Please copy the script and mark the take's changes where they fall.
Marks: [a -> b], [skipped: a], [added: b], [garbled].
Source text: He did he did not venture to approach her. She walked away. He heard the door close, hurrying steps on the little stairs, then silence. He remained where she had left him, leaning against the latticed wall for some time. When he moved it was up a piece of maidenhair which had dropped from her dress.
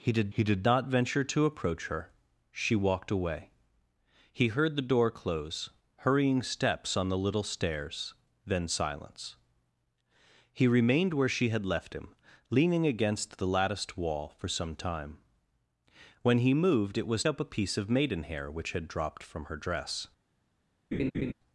He did he did not venture to approach her. She walked away. He heard the door close, hurrying steps on the little stairs, then silence. He remained where she had left him, leaning against the latticed wall for some time. When he moved it was up a piece of maidenhair which had dropped from her dress.